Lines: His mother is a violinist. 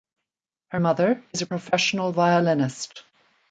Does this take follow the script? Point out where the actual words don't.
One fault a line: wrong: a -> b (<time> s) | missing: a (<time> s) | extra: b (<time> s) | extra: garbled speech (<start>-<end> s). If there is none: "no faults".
wrong: His -> Her (0.7 s)
extra: professional (1.4 s)